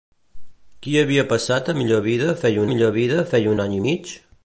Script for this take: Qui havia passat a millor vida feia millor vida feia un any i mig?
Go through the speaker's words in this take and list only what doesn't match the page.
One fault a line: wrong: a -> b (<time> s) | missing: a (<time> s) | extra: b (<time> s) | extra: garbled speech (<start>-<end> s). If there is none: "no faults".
no faults